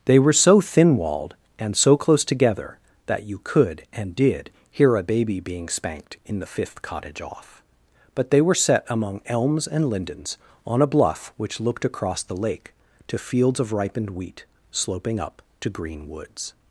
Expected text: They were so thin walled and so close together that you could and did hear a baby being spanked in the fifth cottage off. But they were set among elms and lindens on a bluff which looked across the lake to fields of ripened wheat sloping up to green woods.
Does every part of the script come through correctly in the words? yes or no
yes